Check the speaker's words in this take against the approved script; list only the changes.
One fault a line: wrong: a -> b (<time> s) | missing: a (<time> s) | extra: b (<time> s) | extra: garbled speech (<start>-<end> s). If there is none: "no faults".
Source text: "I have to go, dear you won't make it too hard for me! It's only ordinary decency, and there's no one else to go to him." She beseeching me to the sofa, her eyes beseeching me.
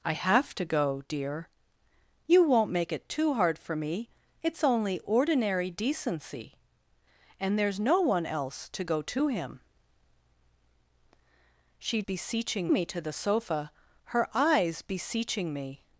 no faults